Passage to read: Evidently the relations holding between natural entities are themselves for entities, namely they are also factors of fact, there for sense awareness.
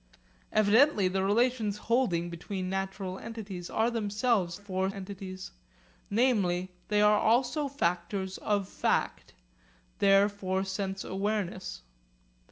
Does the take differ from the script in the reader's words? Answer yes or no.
no